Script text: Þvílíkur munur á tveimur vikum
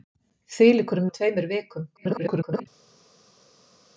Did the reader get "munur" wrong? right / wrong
wrong